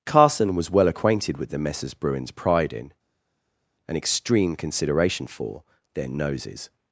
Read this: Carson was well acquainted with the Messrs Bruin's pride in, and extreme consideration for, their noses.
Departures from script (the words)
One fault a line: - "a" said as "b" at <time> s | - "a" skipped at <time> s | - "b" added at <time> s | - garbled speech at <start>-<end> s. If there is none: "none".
none